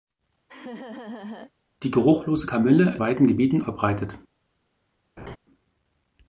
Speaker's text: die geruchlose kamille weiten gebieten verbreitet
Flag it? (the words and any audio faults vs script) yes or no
yes